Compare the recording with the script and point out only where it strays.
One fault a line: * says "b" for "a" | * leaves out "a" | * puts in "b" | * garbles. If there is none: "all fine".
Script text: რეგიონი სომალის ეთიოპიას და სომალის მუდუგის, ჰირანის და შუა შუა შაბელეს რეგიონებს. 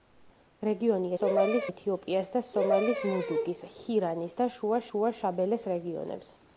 all fine